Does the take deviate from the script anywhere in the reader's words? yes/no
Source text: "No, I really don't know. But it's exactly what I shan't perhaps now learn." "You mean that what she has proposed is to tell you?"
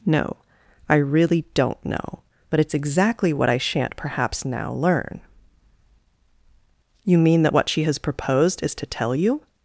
no